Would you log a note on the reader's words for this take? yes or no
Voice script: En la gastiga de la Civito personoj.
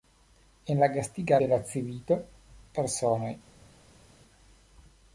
no